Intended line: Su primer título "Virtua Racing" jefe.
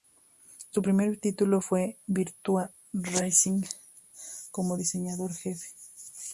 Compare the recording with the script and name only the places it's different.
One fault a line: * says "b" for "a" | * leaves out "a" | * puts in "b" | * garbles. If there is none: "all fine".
* puts in "fue"
* puts in "como diseñador"